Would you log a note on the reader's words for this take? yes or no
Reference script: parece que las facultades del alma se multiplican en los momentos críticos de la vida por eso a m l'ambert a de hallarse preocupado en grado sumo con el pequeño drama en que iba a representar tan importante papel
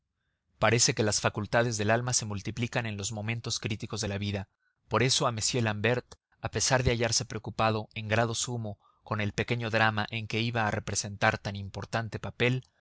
yes